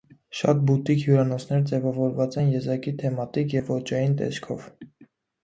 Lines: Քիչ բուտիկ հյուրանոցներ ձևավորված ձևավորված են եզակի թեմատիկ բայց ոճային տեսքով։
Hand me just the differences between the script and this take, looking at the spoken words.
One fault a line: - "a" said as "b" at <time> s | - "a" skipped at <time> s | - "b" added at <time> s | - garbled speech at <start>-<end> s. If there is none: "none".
- "Քիչ" said as "Շատ" at 0.4 s
- "ձևավորված" skipped at 2.4 s
- "բայց" said as "և" at 3.5 s